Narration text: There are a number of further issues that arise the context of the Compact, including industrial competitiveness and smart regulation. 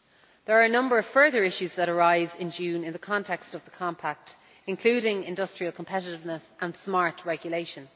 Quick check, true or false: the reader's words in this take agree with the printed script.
false